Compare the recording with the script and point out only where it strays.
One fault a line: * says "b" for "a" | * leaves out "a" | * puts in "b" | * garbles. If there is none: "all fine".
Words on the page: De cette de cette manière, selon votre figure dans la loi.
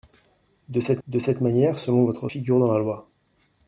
all fine